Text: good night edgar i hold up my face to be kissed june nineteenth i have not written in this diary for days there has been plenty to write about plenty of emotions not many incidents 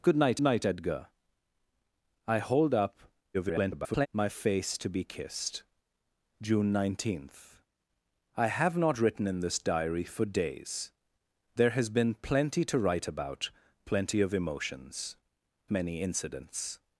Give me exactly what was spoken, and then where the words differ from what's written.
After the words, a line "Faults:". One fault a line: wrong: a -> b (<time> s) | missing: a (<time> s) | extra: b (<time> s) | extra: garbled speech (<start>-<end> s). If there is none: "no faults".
good night night edgar i hold up [garbled] my face to be kissed june nineteenth i have not written in this diary for days there has been plenty to write about plenty of emotions many incidents
Faults:
extra: night (0.4 s)
extra: garbled speech (3.3-4.1 s)
missing: not (15.2 s)